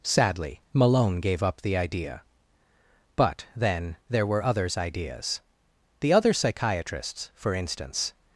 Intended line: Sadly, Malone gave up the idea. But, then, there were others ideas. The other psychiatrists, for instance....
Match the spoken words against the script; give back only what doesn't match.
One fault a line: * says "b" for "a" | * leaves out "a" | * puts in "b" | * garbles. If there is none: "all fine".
all fine